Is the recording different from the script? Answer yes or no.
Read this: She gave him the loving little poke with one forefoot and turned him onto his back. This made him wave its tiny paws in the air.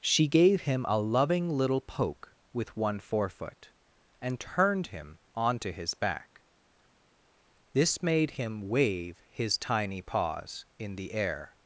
yes